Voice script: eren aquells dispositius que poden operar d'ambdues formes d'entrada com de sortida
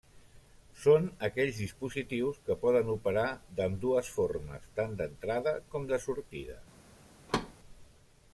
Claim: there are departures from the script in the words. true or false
true